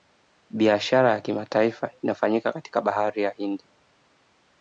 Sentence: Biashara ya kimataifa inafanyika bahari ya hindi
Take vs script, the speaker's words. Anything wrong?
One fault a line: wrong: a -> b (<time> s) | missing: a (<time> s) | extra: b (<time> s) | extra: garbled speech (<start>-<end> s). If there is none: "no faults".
extra: katika (2.5 s)